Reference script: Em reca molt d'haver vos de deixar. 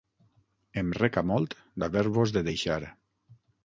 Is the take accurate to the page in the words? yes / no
yes